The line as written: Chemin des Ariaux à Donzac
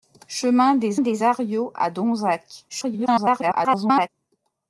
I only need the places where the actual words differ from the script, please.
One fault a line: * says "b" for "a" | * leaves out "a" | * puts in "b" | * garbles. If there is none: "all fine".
* puts in "des"
* garbles